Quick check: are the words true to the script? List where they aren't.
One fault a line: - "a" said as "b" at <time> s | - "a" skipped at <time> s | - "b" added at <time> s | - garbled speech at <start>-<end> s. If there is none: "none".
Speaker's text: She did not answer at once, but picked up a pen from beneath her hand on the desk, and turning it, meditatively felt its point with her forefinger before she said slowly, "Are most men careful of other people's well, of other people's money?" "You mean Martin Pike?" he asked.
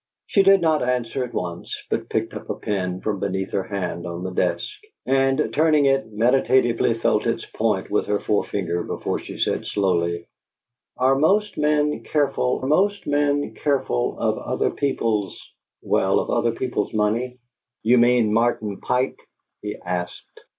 - "most men careful" added at 12.6 s